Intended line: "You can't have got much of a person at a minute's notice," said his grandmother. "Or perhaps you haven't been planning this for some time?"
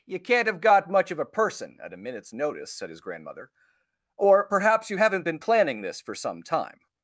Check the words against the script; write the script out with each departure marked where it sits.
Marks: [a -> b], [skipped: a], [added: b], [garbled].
"You can't have got much of a person at a minute's notice," said his grandmother. "Or perhaps you haven't been planning this for some time?"